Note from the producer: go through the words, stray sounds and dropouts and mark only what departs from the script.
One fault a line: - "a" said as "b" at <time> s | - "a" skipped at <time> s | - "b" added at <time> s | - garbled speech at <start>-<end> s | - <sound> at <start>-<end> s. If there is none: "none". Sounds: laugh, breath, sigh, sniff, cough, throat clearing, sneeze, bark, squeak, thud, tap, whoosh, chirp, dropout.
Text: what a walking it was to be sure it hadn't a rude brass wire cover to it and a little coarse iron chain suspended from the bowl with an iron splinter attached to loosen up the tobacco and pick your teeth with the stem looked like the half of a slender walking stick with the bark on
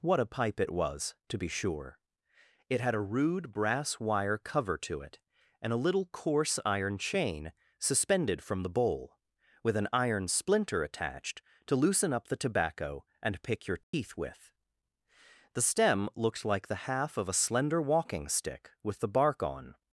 - "walking" said as "pipe" at 0.2 s
- "hadn't" said as "had" at 2.8 s
- dropout at 13.8-13.9 s